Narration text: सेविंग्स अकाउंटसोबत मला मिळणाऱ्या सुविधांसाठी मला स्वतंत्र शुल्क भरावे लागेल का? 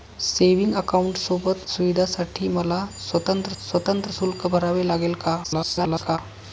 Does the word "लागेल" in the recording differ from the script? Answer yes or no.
no